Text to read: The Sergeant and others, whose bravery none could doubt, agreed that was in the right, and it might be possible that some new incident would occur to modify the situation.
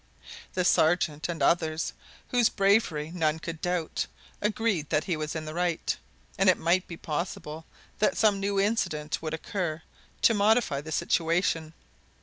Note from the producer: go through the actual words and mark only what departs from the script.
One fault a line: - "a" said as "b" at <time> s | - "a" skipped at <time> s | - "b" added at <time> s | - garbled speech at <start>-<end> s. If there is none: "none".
- "he" added at 5.0 s